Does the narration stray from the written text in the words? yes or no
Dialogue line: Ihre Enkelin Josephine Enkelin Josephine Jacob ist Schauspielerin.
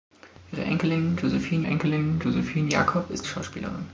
no